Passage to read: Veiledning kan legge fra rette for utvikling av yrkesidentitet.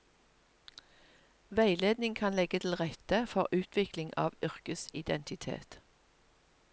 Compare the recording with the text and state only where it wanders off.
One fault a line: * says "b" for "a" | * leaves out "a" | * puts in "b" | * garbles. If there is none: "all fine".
* says "til" for "fra"